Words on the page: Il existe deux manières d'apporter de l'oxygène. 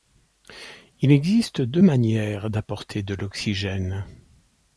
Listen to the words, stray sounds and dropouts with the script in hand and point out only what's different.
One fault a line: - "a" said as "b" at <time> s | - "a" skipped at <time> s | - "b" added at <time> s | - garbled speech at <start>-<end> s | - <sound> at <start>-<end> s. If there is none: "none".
none